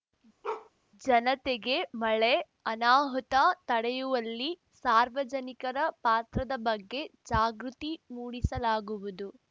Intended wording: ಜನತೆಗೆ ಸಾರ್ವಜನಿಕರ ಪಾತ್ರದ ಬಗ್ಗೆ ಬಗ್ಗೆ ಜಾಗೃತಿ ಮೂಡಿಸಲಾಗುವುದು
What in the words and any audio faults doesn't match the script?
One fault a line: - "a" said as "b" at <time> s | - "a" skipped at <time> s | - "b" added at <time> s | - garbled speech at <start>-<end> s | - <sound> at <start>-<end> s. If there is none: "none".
- bark at 0.4-0.7 s
- "ಮಳೆ ಅನಾಹುತ ತಡೆಯುವಲ್ಲಿ" added at 2.0 s
- "ಬಗ್ಗೆ" skipped at 7.0 s